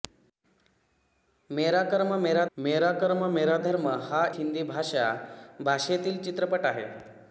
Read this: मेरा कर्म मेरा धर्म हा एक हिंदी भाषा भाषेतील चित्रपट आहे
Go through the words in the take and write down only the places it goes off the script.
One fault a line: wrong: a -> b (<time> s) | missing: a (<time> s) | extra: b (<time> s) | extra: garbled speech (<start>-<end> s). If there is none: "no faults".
extra: मेरा कर्म मेरा (2.6 s)
missing: एक (4.2 s)